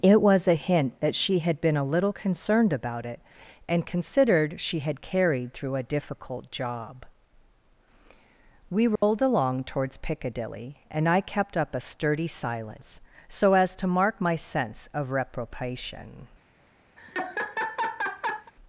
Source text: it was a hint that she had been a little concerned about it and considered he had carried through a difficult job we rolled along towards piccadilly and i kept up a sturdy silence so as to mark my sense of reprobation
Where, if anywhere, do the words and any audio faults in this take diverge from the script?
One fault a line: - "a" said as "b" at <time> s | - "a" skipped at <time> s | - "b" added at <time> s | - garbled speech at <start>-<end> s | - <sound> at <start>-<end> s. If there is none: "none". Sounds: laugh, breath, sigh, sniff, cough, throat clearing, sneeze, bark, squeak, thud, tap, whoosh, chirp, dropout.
- "he" said as "she" at 4.6 s
- dropout at 9.0-9.0 s
- laugh at 17.0-18.5 s